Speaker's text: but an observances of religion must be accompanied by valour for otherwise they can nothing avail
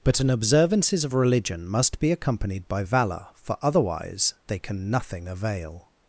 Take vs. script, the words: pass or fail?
pass